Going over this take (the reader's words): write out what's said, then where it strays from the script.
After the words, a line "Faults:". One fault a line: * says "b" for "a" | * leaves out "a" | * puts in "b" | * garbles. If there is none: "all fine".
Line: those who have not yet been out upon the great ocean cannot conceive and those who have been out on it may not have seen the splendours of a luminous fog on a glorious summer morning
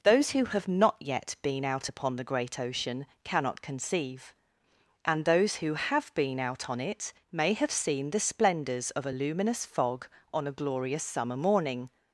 those who have not yet been out upon the great ocean cannot conceive and those who have been out on it may have seen the splendours of a luminous fog on a glorious summer morning
Faults:
* leaves out "not"